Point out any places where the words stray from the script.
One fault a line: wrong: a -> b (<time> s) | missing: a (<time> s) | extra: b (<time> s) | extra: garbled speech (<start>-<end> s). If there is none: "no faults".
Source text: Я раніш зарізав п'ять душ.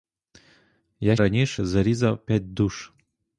no faults